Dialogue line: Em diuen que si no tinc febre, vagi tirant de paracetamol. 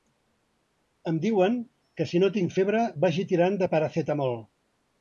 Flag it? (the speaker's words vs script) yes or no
no